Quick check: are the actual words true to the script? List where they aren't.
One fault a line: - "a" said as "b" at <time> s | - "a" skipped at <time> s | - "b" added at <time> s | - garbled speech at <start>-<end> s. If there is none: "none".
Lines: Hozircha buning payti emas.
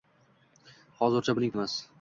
- "payti" skipped at 1.6 s